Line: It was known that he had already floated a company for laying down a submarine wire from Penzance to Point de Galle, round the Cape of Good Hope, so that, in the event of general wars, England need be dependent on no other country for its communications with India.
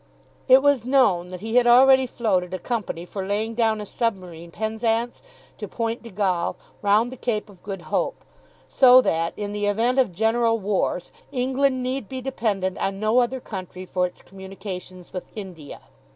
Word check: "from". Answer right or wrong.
wrong